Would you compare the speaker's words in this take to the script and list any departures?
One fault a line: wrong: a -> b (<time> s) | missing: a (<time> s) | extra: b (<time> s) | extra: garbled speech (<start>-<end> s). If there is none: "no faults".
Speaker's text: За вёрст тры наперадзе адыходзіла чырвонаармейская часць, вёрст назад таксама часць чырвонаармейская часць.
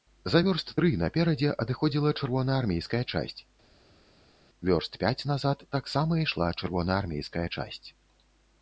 extra: пяць (5.0 s)
wrong: часць -> ішла (6.2 s)